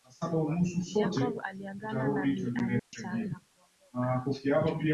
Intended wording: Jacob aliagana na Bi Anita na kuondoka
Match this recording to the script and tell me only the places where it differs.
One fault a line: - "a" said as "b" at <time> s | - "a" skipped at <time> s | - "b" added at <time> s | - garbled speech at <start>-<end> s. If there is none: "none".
none